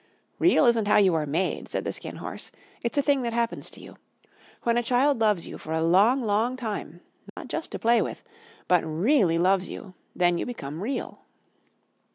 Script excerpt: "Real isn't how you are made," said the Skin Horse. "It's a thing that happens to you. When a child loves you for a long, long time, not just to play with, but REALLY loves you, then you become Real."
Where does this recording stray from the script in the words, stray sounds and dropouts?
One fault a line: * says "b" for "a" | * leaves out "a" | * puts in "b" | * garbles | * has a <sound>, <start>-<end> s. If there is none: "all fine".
* has a dropout, 7.3-7.4 s